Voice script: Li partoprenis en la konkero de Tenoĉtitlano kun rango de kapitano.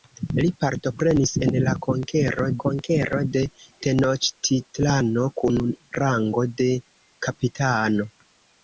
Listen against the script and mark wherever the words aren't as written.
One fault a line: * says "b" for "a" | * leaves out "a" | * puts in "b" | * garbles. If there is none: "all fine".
* puts in "konkero"